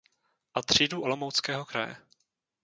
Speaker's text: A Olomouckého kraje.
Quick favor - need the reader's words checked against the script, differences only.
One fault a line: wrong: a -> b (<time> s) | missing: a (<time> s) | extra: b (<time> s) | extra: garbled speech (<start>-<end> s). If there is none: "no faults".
extra: třídu (0.6 s)